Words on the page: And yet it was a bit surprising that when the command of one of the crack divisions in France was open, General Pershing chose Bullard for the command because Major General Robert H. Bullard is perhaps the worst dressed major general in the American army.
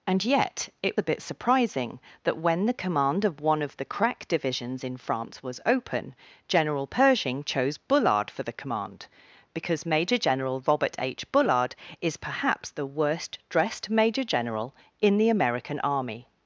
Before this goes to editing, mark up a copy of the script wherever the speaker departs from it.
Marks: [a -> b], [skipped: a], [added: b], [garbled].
And yet it [skipped: was] a bit surprising that when the command of one of the crack divisions in France was open, General Pershing chose Bullard for the command because Major General Robert H. Bullard is perhaps the worst dressed major general in the American army.